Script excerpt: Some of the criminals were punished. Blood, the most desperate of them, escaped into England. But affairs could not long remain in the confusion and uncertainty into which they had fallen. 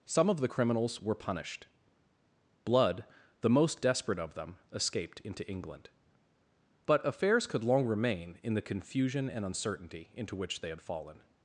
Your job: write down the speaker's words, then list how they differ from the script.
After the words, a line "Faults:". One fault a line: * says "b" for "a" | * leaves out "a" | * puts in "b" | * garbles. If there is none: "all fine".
Some of the criminals were punished. Blood, the most desperate of them, escaped into England. But affairs could long remain in the confusion and uncertainty into which they had fallen.
Faults:
* leaves out "not"